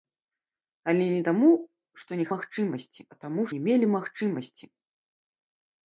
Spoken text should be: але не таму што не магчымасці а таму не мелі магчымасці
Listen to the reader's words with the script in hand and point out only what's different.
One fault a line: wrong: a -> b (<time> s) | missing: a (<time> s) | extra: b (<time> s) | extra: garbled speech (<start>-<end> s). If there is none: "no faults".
no faults